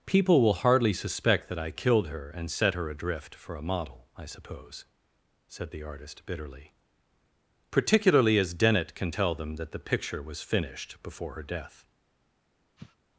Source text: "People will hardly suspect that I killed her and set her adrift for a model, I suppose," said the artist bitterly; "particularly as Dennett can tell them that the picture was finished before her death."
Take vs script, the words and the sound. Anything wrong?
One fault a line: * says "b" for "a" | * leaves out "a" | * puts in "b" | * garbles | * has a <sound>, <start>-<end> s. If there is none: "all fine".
* has a sniff, 12.8-13.0 s